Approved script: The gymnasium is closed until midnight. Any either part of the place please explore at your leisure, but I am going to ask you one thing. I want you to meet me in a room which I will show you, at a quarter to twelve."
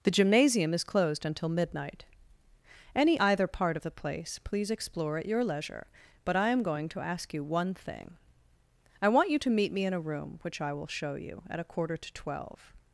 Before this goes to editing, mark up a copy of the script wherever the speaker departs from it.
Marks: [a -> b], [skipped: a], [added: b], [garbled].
The gymnasium is closed until midnight. Any either part of the place please explore at your leisure, but I am going to ask you one thing. I want you to meet me in a room which I will show you, at a quarter to twelve."